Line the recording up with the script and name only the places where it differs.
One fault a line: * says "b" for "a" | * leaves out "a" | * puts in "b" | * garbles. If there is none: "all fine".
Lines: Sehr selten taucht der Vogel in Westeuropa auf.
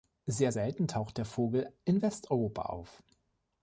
all fine